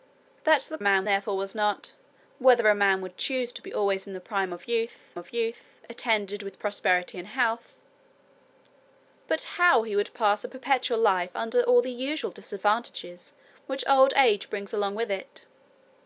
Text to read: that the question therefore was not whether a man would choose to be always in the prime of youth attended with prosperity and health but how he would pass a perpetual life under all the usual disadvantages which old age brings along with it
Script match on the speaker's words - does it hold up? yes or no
no